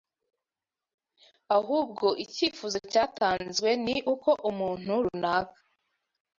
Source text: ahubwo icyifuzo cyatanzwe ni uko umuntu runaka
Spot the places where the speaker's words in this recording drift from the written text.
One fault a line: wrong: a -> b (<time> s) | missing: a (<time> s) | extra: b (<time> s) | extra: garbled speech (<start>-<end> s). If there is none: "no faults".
no faults